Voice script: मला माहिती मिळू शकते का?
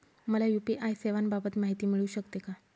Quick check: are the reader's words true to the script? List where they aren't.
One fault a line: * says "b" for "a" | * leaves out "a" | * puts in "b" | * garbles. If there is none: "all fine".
* puts in "यू.पी.आय सेवांबाबत"